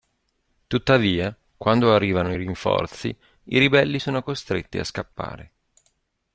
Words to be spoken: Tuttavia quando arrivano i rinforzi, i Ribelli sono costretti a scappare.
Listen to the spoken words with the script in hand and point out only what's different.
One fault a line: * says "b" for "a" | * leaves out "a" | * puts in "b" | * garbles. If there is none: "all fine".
all fine